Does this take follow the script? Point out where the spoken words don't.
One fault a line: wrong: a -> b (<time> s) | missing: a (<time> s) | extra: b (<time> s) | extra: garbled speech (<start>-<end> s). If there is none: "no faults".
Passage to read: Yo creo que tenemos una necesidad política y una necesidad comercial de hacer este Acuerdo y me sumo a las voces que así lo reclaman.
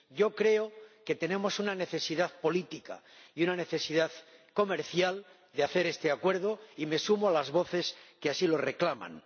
no faults